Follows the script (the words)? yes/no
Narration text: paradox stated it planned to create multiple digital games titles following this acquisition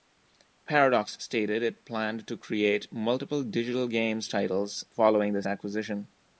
yes